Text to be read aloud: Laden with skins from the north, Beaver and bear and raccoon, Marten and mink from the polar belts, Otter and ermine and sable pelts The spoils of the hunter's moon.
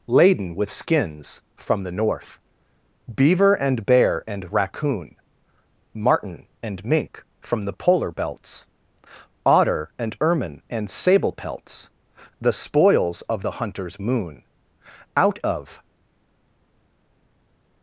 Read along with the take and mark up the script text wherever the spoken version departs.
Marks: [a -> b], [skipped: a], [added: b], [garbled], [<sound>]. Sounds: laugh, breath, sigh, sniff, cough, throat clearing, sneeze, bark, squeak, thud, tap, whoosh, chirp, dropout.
Laden with skins from the north, Beaver and bear and raccoon, Marten and mink from the polar belts, Otter and ermine and sable pelts The spoils of the hunter's moon. [added: Out of]